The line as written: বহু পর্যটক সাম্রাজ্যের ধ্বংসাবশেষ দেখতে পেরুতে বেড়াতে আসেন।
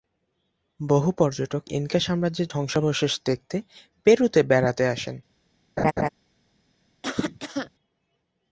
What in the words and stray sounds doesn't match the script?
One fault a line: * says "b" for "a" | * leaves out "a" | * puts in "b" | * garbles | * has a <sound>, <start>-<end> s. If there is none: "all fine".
* puts in "ইনকা"
* has a laugh, 5.8-6.1 s
* has a cough, 7.0-7.7 s